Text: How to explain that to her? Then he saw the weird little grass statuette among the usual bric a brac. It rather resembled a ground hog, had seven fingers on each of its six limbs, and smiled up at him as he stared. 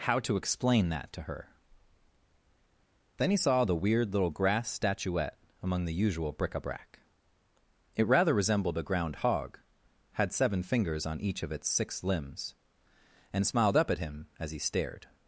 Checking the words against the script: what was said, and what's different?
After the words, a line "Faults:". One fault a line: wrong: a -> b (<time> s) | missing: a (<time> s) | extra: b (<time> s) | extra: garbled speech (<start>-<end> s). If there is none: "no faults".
How to explain that to her? Then he saw the weird little grass statuette among the usual bric a brac. It rather resembled a ground hog, had seven fingers on each of its six limbs, and smiled up at him as he stared.
Faults:
no faults